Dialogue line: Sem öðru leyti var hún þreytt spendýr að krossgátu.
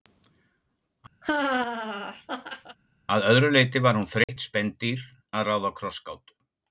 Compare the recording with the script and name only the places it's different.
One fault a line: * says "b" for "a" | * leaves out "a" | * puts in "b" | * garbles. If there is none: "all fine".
* says "Að" for "Sem"
* puts in "ráða"